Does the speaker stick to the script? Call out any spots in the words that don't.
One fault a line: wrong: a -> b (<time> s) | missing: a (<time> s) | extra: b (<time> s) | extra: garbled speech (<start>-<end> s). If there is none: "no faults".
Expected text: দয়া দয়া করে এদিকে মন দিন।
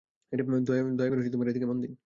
missing: দয়া (1.1 s)